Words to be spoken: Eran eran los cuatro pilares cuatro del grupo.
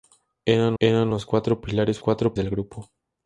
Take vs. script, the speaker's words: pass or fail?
pass